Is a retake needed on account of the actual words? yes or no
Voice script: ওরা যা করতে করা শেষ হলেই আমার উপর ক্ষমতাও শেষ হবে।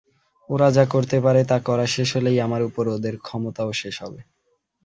yes